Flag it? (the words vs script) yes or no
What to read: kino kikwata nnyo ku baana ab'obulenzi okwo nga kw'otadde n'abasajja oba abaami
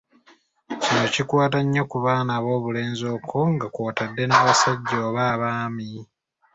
no